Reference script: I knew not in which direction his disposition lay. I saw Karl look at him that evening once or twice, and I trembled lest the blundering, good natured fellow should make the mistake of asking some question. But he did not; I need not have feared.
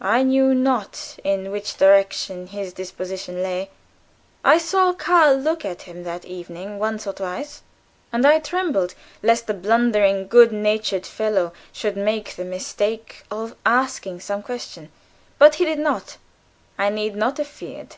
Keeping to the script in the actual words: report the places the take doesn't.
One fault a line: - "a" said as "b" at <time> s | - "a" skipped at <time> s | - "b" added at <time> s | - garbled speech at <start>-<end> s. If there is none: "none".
none